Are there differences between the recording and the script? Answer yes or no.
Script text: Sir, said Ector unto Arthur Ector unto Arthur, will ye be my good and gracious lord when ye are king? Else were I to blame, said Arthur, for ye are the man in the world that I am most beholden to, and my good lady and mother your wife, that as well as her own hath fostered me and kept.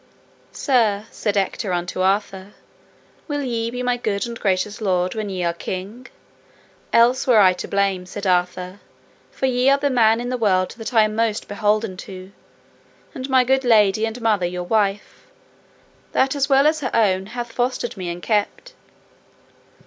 yes